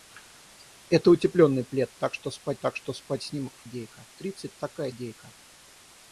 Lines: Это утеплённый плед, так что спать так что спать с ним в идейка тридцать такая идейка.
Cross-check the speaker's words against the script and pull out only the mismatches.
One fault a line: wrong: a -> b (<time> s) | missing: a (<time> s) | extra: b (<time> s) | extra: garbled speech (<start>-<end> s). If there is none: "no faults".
no faults